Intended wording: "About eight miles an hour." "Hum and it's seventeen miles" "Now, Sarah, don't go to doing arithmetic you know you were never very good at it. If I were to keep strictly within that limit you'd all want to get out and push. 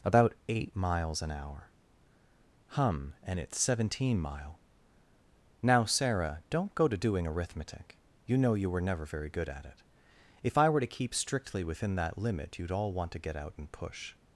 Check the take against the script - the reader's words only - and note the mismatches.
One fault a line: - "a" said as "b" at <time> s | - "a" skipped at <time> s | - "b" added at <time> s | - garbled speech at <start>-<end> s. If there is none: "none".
- "miles" said as "mile" at 4.2 s